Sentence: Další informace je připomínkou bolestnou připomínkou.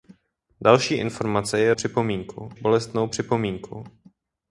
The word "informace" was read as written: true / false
true